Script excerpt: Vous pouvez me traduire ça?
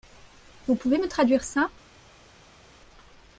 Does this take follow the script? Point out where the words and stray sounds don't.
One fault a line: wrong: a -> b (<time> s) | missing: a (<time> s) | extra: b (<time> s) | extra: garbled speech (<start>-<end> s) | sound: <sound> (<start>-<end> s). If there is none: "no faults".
no faults